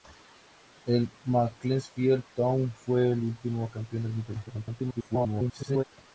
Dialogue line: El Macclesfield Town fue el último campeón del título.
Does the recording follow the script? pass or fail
fail